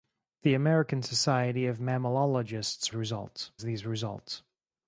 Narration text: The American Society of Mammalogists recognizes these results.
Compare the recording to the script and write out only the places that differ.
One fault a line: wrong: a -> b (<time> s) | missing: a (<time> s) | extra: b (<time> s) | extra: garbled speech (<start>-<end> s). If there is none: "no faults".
wrong: recognizes -> results (2.9 s)